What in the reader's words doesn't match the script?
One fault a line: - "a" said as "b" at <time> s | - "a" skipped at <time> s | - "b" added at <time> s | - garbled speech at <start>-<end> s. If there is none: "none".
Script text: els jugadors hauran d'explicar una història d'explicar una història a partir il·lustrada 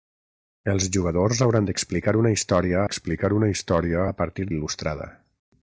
none